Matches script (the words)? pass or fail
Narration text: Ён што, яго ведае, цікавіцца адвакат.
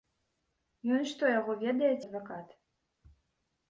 fail